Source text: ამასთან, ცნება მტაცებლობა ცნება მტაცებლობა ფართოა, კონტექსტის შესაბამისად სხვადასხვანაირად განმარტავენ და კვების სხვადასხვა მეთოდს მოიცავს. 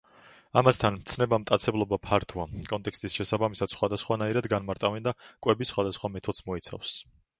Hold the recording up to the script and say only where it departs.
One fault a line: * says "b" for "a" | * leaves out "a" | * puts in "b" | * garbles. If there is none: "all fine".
* leaves out "ცნება მტაცებლობა"